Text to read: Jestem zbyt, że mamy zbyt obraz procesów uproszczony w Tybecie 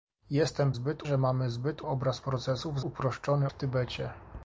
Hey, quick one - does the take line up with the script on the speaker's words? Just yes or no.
yes